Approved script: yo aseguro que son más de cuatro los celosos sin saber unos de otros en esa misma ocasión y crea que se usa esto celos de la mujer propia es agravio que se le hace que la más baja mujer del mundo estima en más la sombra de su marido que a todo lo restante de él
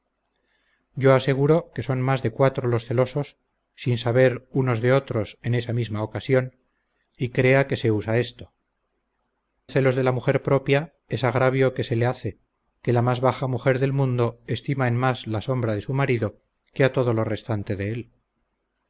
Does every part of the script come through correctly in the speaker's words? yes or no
yes